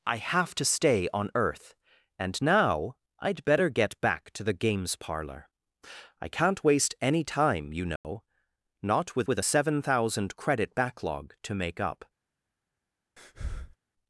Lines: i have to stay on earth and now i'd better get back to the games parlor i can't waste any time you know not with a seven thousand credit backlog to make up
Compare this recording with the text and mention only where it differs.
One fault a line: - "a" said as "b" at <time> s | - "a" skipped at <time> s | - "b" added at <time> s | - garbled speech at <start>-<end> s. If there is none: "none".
- "with" added at 9.3 s